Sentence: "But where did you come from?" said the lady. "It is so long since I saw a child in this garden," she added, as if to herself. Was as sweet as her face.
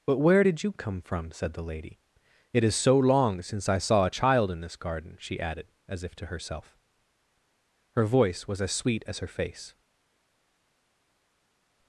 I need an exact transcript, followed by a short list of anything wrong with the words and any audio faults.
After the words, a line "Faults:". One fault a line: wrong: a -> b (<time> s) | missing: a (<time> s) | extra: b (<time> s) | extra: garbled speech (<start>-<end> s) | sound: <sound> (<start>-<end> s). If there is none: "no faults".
"But where did you come from?" said the lady. "It is so long since I saw a child in this garden," she added, as if to herself. Her voice was as sweet as her face.
Faults:
extra: Her voice (7.9 s)